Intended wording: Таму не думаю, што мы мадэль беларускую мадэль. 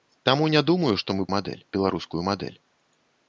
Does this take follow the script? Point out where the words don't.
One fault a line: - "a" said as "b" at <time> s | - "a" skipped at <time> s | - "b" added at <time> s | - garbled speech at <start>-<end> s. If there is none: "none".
none